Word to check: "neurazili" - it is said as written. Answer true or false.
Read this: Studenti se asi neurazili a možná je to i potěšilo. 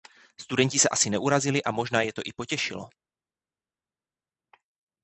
true